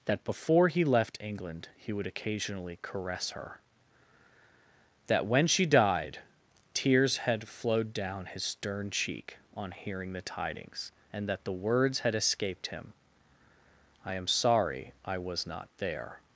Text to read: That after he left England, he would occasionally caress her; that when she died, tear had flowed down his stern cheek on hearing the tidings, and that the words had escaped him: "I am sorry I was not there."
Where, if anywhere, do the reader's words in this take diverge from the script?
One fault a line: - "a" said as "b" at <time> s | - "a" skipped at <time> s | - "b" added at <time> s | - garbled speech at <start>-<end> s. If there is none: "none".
- "after" said as "before" at 0.2 s
- "tear" said as "tears" at 6.7 s